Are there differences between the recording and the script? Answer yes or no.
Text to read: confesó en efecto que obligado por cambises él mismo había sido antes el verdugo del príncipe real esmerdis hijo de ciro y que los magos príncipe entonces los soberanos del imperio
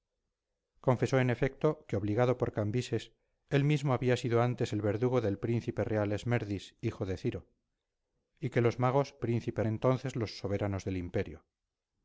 no